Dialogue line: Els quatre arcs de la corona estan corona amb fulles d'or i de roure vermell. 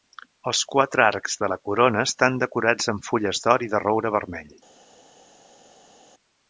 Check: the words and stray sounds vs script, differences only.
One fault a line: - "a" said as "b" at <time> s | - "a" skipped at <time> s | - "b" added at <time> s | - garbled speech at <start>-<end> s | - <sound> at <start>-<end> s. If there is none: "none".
- "corona" said as "decorats" at 2.4 s